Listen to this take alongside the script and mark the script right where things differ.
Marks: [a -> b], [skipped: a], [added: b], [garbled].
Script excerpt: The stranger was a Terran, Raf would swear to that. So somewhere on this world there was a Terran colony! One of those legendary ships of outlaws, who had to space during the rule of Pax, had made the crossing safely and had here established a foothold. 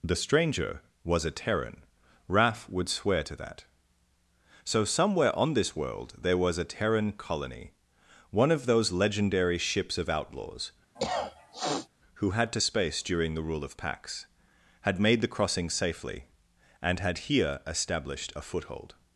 The stranger was a Terran, Raf would swear to that. So somewhere on this world there was a Terran colony! One of those legendary ships of outlaws, who had to space during the rule of Pax, had made the crossing safely and had here established a foothold.